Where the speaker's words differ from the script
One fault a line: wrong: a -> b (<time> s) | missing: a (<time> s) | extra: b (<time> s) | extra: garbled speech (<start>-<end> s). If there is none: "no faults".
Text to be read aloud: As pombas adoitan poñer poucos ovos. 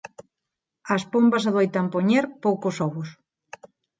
no faults